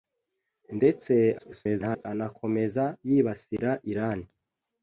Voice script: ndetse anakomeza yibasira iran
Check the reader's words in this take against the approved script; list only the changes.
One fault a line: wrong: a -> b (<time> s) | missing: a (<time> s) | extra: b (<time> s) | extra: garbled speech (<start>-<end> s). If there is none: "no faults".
extra: garbled speech (1.4-2.1 s)